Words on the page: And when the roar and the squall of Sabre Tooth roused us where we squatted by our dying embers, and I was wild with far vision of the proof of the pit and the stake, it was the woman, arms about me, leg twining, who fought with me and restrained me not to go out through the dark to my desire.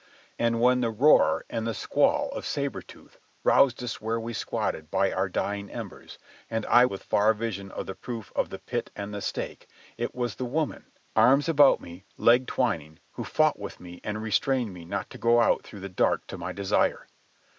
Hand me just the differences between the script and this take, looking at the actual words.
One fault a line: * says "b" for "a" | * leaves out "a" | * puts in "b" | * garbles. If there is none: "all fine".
* leaves out "was wild"